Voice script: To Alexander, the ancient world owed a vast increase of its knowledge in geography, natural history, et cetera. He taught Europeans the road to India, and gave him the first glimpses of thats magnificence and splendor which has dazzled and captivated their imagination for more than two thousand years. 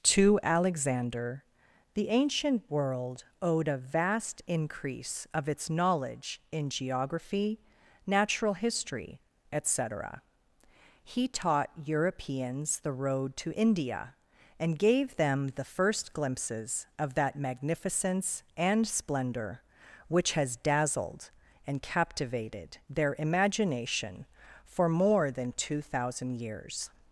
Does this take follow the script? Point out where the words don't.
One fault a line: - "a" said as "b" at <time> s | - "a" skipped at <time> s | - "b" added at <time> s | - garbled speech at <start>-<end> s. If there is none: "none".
- "him" said as "them" at 15.2 s
- "thats" said as "that" at 17.1 s